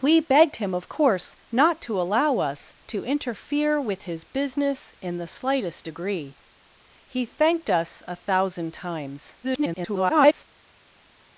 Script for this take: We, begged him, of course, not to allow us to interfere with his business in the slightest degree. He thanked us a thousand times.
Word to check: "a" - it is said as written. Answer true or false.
true